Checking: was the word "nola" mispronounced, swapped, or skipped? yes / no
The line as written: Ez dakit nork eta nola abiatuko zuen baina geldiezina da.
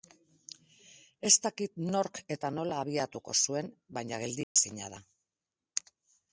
no